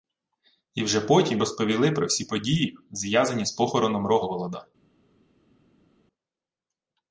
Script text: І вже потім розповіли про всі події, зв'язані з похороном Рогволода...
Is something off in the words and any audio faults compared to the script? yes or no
no